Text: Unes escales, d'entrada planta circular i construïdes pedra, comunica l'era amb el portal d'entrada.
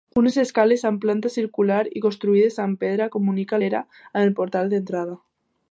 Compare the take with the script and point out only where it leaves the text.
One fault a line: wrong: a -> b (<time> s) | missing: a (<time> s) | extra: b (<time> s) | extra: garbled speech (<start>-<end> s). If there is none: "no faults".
wrong: d'entrada -> amb (0.9 s)
extra: amb (2.6 s)